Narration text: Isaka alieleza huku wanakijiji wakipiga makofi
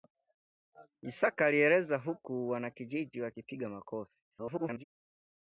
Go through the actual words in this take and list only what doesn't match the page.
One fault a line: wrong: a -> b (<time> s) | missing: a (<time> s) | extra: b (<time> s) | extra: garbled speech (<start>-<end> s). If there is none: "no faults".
extra: garbled speech (4.3-4.8 s)